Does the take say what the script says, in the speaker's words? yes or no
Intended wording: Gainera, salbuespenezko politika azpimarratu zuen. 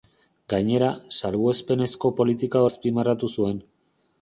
yes